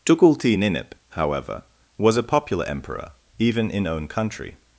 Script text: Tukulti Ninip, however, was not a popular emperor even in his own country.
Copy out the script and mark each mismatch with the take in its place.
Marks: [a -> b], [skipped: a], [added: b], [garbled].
Tukulti Ninip, however, was [skipped: not] a popular emperor even in [skipped: his] own country.